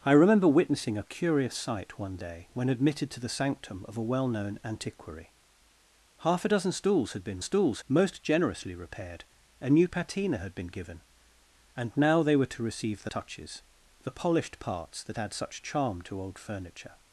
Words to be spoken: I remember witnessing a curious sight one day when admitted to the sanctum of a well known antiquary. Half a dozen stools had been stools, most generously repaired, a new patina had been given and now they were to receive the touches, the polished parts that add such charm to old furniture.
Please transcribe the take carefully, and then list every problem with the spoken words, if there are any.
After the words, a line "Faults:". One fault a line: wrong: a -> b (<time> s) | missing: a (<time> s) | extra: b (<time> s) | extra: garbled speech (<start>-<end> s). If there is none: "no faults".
I remember witnessing a curious sight one day when admitted to the sanctum of a well known antiquary. Half a dozen stools had been stools, most generously repaired, a new patina had been given and now they were to receive the touches, the polished parts that add such charm to old furniture.
Faults:
no faults